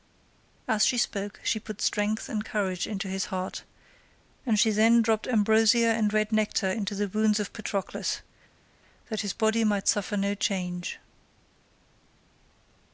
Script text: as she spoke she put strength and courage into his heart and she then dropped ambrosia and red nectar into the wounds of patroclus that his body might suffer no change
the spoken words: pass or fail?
pass